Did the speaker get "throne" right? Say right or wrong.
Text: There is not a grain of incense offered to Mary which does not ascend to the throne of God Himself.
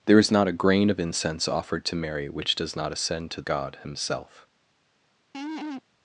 wrong